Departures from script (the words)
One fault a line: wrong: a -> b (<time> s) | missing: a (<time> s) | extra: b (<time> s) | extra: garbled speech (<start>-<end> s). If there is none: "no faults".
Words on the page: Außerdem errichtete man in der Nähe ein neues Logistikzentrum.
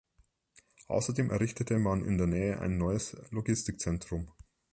no faults